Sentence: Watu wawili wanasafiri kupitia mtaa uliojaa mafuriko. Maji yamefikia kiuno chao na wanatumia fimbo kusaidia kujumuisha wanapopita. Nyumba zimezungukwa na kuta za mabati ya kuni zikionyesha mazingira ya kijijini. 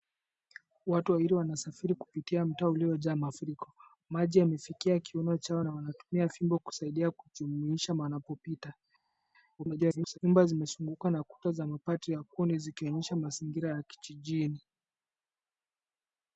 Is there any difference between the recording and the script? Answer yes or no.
yes